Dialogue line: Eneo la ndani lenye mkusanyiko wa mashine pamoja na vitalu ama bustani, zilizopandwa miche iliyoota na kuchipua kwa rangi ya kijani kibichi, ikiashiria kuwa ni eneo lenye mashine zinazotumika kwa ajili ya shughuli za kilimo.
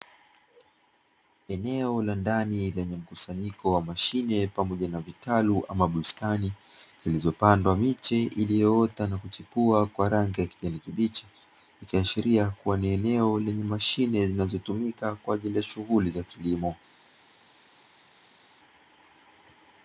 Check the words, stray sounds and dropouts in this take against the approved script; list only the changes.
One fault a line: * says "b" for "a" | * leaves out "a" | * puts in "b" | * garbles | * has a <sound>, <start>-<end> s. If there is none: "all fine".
all fine